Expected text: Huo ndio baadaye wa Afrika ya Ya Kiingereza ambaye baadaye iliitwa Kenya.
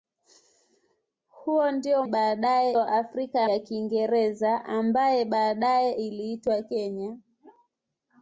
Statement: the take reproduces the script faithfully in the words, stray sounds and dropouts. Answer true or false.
true